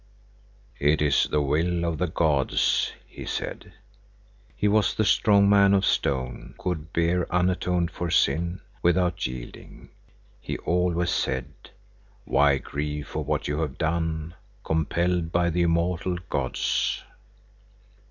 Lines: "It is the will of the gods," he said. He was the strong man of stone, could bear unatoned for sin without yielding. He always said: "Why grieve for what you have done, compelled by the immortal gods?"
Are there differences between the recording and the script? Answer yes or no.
no